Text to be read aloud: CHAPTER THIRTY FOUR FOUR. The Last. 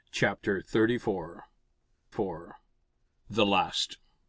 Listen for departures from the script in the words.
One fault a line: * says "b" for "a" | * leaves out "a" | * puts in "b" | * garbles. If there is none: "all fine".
all fine